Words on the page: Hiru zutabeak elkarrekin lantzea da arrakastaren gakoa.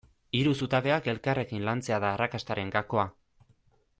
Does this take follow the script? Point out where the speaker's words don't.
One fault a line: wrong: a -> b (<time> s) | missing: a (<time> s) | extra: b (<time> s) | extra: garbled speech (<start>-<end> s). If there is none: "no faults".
no faults